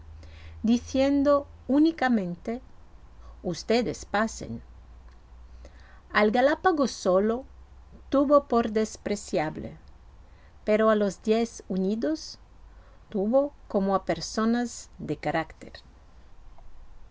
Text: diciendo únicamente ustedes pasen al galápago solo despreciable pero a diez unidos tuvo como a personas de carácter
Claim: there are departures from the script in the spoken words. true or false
true